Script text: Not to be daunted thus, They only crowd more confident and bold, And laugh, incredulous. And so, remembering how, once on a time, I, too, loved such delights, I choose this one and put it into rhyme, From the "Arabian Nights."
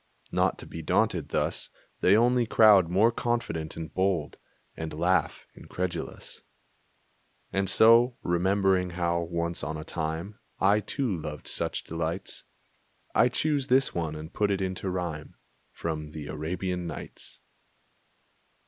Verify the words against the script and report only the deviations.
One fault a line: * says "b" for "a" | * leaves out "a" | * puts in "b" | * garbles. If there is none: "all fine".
all fine